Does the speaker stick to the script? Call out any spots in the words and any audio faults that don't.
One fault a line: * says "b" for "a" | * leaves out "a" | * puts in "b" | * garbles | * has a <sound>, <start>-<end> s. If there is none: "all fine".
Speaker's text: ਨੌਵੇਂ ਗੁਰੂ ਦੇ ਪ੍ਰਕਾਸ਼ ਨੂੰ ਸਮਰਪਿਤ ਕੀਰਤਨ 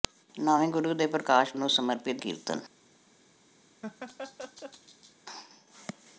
* has a laugh, 3.8-5.2 s